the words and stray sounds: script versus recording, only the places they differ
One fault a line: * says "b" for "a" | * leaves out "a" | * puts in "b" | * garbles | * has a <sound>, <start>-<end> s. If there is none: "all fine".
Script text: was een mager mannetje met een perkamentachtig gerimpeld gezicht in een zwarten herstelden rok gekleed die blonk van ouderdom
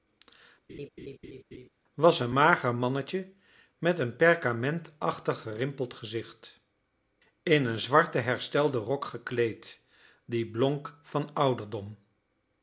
* has a laugh, 0.7-1.7 s